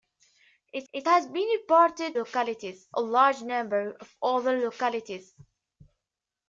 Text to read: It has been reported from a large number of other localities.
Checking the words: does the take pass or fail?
fail